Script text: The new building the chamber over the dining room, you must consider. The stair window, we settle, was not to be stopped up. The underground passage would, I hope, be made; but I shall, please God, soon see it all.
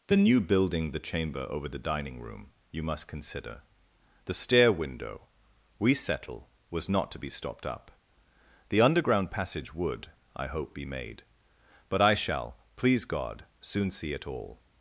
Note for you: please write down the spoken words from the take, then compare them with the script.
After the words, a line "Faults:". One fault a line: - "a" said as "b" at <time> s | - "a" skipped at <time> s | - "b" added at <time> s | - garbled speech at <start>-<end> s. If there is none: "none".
The new building the chamber over the dining room, you must consider. The stair window, we settle, was not to be stopped up. The underground passage would, I hope, be made; but I shall, please God, soon see it all.
Faults:
none